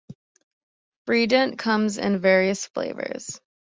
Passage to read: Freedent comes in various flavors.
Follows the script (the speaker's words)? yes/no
yes